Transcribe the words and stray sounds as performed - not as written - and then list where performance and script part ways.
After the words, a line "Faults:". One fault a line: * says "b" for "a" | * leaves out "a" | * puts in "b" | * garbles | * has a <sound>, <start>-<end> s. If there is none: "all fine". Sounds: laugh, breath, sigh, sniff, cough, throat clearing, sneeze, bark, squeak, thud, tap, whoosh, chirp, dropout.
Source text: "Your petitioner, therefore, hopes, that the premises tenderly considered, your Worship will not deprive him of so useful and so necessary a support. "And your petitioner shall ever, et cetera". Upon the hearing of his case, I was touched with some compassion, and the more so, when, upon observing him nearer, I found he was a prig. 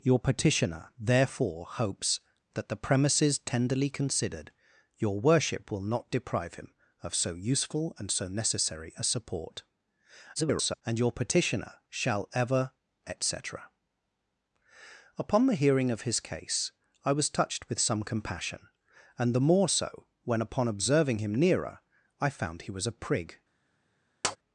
"Your petitioner, therefore, hopes, that the premises tenderly considered, your Worship will not deprive him of so useful and so necessary a support. [garbled] "And your petitioner shall ever, et cetera". Upon the hearing of his case, I was touched with some compassion, and the more so, when, upon observing him nearer, I found he was a prig.
Faults:
* garbles
* has a tap, 24.2-24.4 s